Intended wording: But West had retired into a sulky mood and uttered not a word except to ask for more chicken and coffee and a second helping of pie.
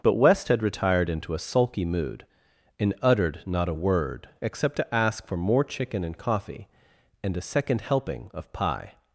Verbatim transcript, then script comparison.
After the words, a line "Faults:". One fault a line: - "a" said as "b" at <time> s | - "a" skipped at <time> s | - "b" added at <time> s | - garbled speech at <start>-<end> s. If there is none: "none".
But West had retired into a sulky mood and uttered not a word except to ask for more chicken and coffee and a second helping of pie.
Faults:
none